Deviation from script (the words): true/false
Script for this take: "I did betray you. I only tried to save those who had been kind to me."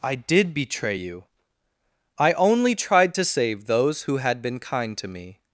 false